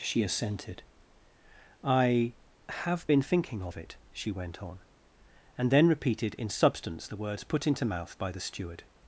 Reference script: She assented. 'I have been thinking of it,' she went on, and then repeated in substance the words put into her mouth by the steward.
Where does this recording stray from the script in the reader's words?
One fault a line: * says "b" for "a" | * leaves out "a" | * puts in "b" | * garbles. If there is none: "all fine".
* leaves out "her"